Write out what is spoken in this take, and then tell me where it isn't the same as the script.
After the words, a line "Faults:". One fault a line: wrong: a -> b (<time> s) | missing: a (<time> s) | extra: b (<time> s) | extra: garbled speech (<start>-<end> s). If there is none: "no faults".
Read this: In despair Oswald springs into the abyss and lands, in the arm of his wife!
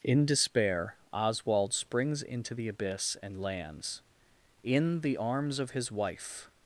In despair Oswald springs into the abyss and lands, in the arms of his wife!
Faults:
wrong: arm -> arms (5.2 s)